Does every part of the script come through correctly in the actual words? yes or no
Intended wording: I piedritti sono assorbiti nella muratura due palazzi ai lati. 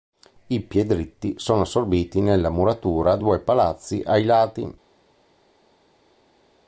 yes